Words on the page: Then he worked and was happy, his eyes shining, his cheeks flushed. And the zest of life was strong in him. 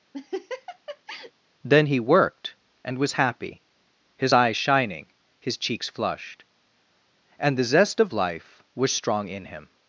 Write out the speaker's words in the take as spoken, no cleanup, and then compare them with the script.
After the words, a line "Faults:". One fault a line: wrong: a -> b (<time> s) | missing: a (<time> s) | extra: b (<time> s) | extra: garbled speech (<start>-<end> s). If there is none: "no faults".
Then he worked and was happy, his eyes shining, his cheeks flushed. And the zest of life was strong in him.
Faults:
no faults